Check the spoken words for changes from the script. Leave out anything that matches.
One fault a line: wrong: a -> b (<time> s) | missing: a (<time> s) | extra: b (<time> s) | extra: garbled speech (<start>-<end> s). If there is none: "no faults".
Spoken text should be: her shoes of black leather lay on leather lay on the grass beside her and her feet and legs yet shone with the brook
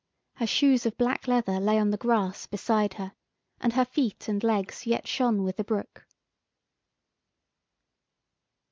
missing: leather lay on (1.9 s)